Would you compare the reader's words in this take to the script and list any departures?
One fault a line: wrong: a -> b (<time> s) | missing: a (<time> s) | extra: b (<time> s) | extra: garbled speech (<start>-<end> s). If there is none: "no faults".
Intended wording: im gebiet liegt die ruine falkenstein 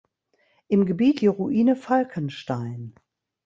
missing: liegt (1.2 s)